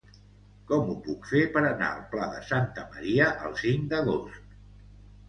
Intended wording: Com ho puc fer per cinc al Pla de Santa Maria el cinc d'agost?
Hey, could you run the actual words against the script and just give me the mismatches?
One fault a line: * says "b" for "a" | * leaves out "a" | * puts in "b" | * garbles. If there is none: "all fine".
* says "anar" for "cinc"